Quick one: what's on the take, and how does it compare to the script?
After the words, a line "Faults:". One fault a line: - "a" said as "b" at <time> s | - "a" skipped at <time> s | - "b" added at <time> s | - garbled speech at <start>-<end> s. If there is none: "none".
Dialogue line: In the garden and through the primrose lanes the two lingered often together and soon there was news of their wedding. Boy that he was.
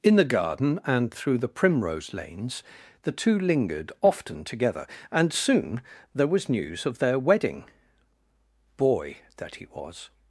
In the garden and through the primrose lanes the two lingered often together and soon there was news of their wedding. Boy that he was.
Faults:
none